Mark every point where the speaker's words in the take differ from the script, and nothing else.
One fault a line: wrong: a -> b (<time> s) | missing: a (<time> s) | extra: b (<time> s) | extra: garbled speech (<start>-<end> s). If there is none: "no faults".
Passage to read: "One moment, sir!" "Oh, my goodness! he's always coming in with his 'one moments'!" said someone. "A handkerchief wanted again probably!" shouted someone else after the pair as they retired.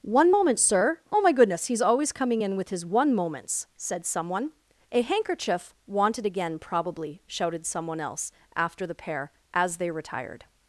no faults